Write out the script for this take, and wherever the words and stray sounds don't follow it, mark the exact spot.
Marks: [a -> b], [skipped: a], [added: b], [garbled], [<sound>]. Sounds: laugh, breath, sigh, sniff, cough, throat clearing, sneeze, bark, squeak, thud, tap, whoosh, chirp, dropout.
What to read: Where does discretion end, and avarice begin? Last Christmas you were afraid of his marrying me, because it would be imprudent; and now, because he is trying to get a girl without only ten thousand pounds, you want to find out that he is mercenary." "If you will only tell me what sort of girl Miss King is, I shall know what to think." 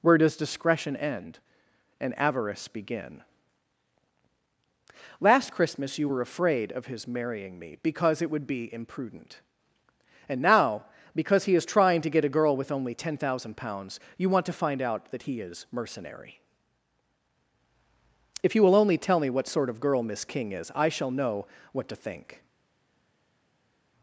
Where does discretion end, and avarice begin? Last Christmas you were afraid of his marrying me, because it would be imprudent; and now, because he is trying to get a girl [without -> with] only ten thousand pounds, you want to find out that he is mercenary." "If you will only tell me what sort of girl Miss King is, I shall know what to think."